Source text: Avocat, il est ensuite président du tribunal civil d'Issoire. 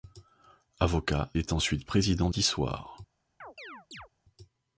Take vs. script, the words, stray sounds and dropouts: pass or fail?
fail